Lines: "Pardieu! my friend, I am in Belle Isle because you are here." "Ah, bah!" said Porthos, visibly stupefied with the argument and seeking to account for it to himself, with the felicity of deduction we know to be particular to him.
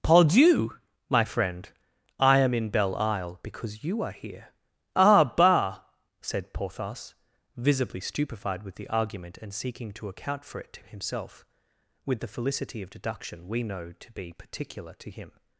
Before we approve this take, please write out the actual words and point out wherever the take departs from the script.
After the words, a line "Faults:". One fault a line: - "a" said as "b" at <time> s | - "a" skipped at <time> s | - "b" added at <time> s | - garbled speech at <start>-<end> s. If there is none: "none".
"Pardieu! my friend, I am in Belle Isle because you are here." "Ah, bah!" said Porthos, visibly stupefied with the argument and seeking to account for it to himself, with the felicity of deduction we know to be particular to him.
Faults:
none